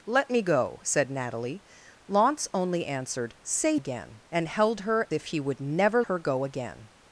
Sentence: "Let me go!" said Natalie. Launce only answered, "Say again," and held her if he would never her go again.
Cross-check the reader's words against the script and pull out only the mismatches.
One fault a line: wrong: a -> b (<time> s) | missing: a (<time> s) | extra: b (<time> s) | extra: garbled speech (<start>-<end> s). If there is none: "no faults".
no faults